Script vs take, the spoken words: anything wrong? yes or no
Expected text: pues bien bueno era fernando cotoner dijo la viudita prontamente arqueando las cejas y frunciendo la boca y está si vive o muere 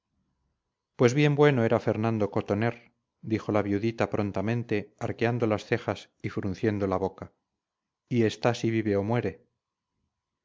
no